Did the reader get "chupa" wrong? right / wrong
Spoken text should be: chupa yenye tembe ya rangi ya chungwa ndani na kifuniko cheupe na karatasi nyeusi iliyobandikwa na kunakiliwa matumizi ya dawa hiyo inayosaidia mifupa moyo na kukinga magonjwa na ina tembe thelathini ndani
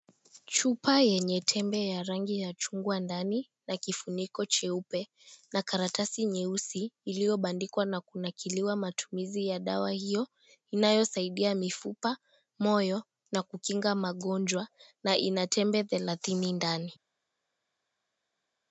right